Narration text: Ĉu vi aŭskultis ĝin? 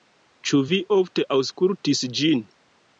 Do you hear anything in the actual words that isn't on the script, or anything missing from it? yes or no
yes